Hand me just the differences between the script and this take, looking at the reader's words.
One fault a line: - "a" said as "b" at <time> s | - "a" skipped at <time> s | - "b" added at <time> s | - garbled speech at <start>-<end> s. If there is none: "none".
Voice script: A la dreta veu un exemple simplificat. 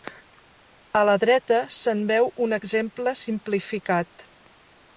- "se'n" added at 1.8 s